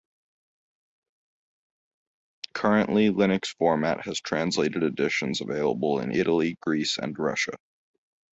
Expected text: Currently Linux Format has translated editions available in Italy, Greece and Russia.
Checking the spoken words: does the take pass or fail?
pass